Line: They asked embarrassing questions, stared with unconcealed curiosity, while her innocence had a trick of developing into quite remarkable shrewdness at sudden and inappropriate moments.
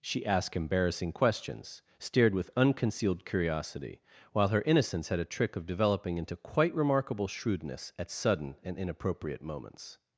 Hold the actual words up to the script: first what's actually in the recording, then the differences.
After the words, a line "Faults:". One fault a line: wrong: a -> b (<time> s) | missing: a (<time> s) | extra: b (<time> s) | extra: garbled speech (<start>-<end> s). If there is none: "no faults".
She asked embarrassing questions, stared with unconcealed curiosity, while her innocence had a trick of developing into quite remarkable shrewdness at sudden and inappropriate moments.
Faults:
wrong: They -> She (0.0 s)